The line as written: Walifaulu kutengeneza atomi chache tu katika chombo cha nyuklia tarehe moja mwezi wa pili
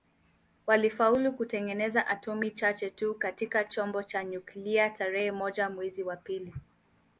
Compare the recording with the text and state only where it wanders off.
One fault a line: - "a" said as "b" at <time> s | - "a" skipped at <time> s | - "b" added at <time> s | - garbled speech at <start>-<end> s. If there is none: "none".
none